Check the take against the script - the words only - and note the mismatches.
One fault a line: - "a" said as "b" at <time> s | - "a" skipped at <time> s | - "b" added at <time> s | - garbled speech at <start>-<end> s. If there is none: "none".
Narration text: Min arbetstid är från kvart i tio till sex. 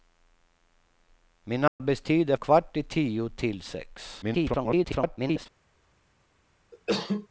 - "från" skipped at 2.4 s
- garbled speech at 4.2-5.5 s